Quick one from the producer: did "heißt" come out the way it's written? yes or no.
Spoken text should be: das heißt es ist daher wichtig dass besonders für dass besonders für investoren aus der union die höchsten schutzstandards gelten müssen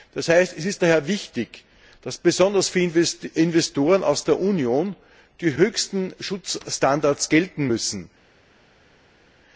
yes